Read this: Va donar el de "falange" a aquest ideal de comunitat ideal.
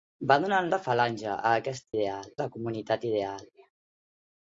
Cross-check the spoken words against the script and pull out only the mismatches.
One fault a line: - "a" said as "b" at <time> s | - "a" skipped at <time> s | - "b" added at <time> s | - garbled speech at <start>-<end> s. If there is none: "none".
none